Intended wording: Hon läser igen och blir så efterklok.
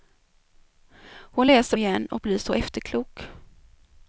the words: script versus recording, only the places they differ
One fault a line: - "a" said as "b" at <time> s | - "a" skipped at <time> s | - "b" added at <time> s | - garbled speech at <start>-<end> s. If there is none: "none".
none